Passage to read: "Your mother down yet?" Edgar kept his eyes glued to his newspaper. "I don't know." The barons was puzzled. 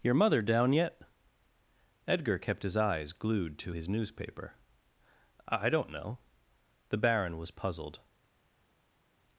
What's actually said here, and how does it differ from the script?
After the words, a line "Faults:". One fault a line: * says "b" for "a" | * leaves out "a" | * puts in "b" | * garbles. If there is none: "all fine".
"Your mother down yet?" Edgar kept his eyes glued to his newspaper. "I don't know." The baron was puzzled.
Faults:
* says "baron" for "barons"